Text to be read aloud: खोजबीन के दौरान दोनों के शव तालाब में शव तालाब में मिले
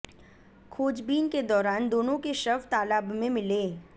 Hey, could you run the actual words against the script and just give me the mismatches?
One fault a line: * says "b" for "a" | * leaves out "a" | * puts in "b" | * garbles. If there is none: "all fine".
* leaves out "शव तालाब में"